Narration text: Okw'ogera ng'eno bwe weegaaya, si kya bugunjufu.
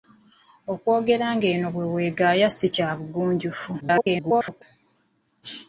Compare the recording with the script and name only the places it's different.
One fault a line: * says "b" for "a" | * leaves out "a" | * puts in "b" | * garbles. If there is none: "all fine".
* garbles